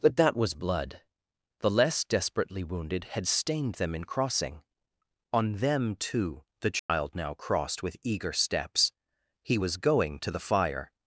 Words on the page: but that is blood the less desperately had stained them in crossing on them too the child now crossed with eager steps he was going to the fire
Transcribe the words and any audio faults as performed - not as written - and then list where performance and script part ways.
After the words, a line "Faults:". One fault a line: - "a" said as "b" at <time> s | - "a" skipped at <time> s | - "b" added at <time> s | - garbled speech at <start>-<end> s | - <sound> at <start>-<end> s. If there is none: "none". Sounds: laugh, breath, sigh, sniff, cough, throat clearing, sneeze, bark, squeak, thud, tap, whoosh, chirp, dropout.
but that was blood the less desperately wounded had stained them in crossing on them too the child now crossed with eager steps he was going to the fire
Faults:
- "is" said as "was" at 0.3 s
- "wounded" added at 2.6 s
- dropout at 6.8-6.9 s